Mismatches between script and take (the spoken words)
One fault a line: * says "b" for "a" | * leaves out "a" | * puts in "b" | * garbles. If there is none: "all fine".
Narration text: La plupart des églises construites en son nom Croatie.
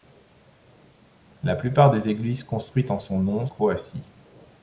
all fine